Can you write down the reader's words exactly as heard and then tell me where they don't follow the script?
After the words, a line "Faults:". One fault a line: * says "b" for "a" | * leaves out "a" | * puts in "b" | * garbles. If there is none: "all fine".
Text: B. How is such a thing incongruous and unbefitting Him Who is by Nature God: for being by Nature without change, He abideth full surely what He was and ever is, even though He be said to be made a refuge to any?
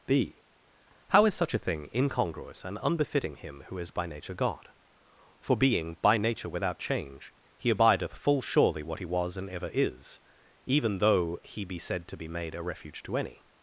B. How is such a thing incongruous and unbefitting Him Who is by Nature God: for being by Nature without change, He abideth full surely what He was and ever is, even though He be said to be made a refuge to any?
Faults:
all fine